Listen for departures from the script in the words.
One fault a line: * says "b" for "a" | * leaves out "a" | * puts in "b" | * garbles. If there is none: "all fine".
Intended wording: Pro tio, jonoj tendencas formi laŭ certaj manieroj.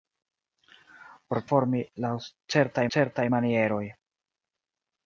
* leaves out "tio jonoj tendencas"
* puts in "certaj"